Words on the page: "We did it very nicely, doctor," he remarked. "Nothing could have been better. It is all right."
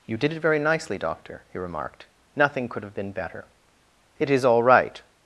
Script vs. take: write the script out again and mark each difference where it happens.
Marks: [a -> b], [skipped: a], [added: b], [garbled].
["We -> You] did it very nicely, doctor," he remarked. "Nothing could have been better. It is all right."